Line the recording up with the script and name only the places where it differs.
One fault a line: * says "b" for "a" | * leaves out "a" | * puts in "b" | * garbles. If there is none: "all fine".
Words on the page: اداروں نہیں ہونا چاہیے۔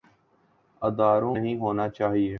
all fine